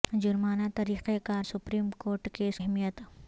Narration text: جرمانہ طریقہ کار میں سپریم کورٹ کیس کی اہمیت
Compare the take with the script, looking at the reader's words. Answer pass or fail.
fail